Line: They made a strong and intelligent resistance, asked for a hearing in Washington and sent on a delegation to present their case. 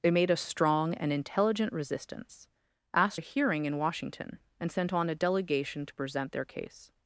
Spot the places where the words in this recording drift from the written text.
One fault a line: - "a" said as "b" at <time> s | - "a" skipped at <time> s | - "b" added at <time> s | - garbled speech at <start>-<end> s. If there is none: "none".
- "for" skipped at 3.2 s